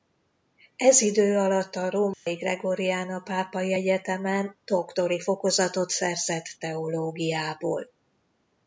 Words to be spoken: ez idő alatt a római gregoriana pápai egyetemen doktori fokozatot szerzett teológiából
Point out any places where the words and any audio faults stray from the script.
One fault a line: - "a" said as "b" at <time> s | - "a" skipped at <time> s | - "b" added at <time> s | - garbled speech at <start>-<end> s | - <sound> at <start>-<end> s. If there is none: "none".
- dropout at 2.1-2.3 s